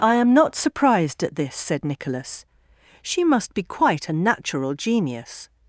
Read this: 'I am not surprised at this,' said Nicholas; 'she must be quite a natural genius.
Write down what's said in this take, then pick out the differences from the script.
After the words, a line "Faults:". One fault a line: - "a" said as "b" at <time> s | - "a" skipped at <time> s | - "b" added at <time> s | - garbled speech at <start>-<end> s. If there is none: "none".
'I am not surprised at this,' said Nicholas; 'she must be quite a natural genius.
Faults:
none